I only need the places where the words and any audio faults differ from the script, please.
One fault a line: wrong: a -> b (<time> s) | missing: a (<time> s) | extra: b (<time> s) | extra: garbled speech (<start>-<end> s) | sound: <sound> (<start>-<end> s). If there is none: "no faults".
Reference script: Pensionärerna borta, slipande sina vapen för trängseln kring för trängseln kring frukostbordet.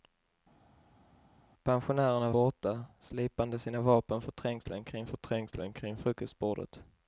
no faults